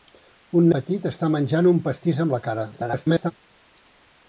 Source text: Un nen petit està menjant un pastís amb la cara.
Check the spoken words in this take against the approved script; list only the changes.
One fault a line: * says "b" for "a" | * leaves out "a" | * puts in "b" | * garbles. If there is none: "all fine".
* leaves out "nen"
* garbles